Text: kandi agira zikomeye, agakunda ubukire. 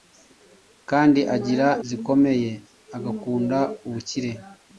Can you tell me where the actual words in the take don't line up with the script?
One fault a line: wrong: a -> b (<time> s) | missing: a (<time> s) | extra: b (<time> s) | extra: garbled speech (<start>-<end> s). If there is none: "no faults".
no faults